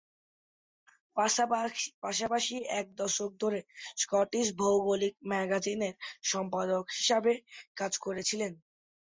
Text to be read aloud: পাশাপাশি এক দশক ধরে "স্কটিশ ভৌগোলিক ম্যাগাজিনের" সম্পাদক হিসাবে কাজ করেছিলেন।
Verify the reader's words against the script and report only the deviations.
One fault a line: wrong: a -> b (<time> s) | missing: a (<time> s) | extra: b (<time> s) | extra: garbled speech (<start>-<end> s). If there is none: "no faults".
no faults